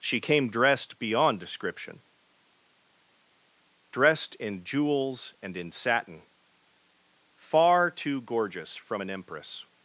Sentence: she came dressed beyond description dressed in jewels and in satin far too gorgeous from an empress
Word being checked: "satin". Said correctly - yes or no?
yes